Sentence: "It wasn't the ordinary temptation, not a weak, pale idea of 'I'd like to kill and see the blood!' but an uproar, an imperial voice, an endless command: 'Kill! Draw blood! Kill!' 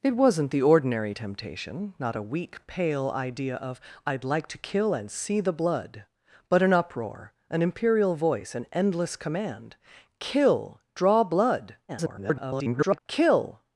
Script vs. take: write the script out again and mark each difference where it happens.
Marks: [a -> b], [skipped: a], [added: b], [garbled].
"It wasn't the ordinary temptation, not a weak, pale idea of 'I'd like to kill and see the blood!' but an uproar, an imperial voice, an endless command: 'Kill! Draw blood! [garbled] Kill!'